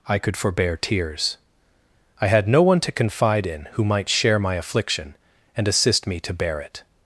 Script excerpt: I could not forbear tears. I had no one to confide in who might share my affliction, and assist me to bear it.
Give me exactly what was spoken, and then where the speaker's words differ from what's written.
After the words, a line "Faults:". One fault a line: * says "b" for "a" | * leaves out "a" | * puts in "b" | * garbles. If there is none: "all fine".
I could forbear tears. I had no one to confide in who might share my affliction, and assist me to bear it.
Faults:
* leaves out "not"